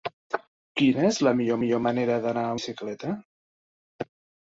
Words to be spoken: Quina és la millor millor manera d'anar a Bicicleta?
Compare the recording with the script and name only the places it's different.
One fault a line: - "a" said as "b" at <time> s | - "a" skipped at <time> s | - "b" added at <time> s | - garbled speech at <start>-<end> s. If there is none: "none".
none